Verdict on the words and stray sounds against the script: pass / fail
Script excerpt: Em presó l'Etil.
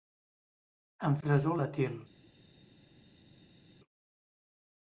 pass